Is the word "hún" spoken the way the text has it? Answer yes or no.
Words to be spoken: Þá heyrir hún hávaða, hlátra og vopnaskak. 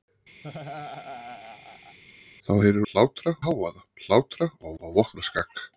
no